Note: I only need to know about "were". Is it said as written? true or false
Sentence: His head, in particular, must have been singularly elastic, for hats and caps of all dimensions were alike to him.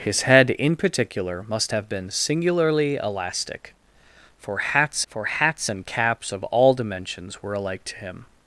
true